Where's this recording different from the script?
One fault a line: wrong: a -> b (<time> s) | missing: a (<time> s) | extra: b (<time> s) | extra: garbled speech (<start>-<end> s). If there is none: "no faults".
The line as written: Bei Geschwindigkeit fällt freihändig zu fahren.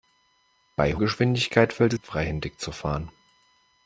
no faults